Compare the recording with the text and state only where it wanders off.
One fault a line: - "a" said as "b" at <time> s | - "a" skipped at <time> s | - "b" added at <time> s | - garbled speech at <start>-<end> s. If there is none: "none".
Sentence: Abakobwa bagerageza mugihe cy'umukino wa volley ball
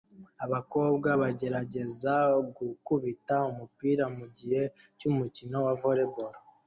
- "gukubita umupira" added at 2.6 s